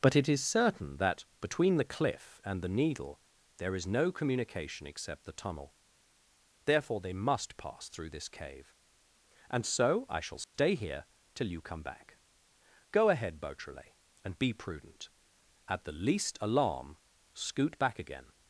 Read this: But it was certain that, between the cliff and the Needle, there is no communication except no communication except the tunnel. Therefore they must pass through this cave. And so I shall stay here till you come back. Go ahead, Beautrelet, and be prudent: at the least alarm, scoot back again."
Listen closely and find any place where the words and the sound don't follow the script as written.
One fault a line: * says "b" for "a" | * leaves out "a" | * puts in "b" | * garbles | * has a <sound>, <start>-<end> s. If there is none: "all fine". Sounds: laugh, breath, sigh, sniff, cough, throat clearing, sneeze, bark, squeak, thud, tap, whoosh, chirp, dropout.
* says "is" for "was"
* leaves out "no communication except"
* has a dropout, 10.4-10.5 s